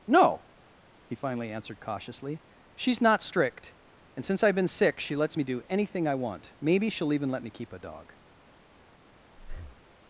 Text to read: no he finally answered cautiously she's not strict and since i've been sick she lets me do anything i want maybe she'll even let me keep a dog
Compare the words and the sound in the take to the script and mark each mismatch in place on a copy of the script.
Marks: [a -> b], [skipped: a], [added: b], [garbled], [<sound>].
no he finally answered cautiously she's not strict and since i've been sick she lets me do anything i want maybe she'll even let me keep a dog [breath]